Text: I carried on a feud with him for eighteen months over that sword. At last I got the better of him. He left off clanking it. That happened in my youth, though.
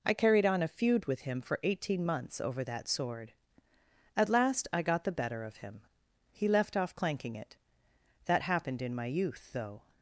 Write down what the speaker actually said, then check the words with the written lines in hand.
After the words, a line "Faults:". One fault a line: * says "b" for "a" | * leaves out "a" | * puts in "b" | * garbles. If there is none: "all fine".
I carried on a feud with him for eighteen months over that sword. At last I got the better of him. He left off clanking it. That happened in my youth, though.
Faults:
all fine